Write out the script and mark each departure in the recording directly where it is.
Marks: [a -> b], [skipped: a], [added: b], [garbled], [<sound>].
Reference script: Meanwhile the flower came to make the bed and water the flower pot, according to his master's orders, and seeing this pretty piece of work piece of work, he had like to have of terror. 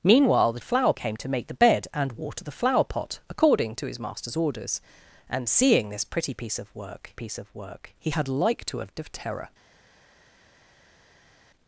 Meanwhile the flower came to make the bed and water the flower pot, according to his master's orders, and seeing this pretty piece of work piece of work, he had like to have of terror.